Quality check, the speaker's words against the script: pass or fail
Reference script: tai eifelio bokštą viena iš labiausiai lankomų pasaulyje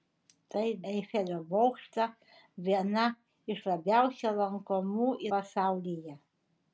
pass